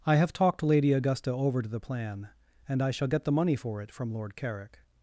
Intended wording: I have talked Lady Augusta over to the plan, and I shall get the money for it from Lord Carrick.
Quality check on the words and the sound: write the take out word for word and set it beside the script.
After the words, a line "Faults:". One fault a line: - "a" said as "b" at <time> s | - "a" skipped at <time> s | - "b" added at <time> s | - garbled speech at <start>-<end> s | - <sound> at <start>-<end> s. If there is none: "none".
I have talked Lady Augusta over to the plan, and I shall get the money for it from Lord Carrick.
Faults:
none